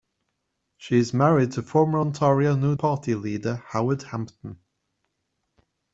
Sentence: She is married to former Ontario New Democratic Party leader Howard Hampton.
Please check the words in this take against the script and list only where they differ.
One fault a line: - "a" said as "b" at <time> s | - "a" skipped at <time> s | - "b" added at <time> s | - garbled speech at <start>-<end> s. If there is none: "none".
- "Democratic" skipped at 2.7 s